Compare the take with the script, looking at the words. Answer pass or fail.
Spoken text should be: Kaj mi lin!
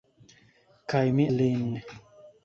pass